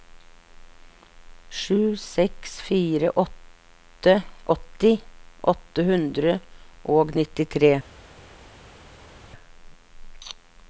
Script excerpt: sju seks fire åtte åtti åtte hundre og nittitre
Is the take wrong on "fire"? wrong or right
right